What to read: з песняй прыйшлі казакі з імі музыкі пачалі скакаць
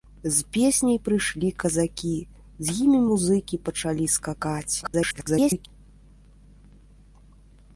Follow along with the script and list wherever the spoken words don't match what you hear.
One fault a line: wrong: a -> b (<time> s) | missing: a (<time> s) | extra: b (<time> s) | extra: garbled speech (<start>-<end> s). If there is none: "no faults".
extra: garbled speech (4.8-5.7 s)